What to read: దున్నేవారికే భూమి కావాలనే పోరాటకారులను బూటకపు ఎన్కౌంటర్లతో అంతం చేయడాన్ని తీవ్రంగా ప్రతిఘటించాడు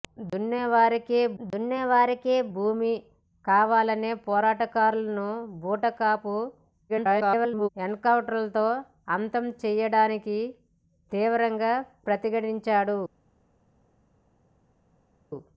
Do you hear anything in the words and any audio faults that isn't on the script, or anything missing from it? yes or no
yes